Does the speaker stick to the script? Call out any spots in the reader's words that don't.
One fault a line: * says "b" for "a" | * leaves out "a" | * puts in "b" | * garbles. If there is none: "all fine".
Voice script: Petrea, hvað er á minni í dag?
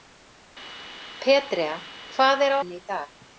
all fine